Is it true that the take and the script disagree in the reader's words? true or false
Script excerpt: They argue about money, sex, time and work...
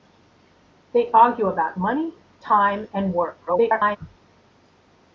true